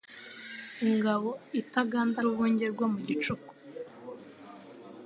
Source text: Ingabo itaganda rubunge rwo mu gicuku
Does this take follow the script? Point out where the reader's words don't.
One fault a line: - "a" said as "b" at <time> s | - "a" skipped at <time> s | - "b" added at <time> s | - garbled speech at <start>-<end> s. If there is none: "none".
none